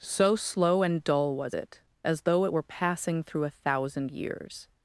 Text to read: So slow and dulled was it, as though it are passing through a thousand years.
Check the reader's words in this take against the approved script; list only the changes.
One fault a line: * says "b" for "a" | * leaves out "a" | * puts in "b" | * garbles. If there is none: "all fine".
* says "dull" for "dulled"
* says "were" for "are"